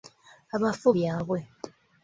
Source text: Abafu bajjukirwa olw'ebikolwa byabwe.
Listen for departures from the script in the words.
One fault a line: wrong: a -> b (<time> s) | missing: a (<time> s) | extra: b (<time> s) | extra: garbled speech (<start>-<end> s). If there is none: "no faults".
missing: bajjukirwa olw'ebikolwa (0.9 s)